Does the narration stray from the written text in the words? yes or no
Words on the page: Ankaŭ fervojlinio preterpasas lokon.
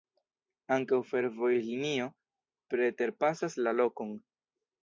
yes